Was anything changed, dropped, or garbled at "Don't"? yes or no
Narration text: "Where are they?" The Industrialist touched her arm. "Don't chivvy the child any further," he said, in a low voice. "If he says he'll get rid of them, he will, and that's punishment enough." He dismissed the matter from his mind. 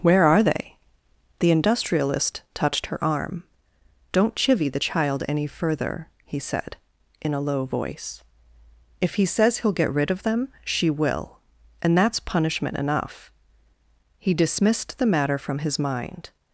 no